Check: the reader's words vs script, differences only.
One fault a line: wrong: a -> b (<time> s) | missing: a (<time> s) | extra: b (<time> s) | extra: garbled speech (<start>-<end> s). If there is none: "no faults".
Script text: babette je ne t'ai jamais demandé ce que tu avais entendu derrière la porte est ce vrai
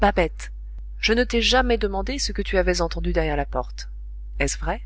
no faults